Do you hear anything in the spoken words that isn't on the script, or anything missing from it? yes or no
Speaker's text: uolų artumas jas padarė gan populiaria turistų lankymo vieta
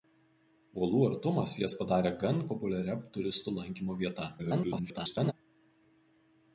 yes